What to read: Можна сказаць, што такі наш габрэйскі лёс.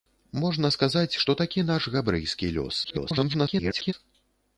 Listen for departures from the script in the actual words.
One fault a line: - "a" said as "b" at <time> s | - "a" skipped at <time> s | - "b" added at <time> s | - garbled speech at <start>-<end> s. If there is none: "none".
- garbled speech at 2.8-3.9 s